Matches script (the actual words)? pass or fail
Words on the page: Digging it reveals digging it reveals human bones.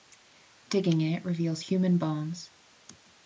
fail